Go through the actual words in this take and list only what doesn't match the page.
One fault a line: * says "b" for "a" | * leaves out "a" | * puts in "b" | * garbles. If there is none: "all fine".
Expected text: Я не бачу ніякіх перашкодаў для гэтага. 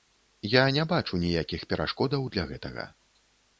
all fine